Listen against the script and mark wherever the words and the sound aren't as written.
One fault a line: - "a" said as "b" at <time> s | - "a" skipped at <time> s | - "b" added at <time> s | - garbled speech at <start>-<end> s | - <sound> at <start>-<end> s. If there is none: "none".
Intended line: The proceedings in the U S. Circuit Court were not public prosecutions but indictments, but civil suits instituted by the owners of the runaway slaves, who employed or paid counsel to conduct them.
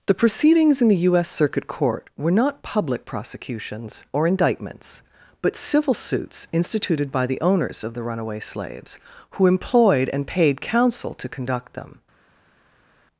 - "but" said as "or" at 4.1 s
- "or" said as "and" at 10.1 s